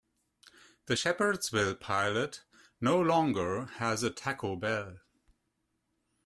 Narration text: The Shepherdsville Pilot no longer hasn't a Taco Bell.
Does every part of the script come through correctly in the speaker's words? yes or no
no